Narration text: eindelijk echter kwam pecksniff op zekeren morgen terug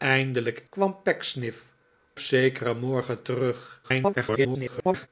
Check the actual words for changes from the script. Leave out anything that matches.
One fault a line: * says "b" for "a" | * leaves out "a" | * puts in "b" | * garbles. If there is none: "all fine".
* leaves out "echter"
* leaves out "op"
* garbles